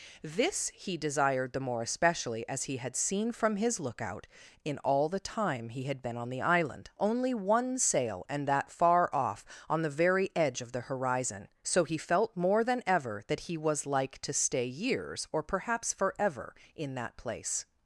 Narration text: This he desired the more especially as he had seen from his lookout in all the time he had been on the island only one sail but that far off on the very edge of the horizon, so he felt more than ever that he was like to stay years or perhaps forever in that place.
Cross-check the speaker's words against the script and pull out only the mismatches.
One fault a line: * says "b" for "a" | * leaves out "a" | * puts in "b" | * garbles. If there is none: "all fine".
* says "and" for "but"